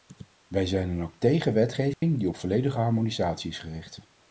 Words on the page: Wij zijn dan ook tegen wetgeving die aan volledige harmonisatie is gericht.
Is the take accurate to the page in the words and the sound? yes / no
no